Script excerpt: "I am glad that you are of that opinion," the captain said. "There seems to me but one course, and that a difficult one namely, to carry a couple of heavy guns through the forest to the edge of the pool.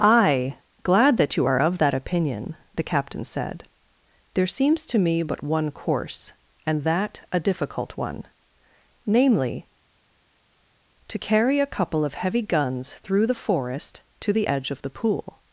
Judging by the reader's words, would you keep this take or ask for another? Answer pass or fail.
fail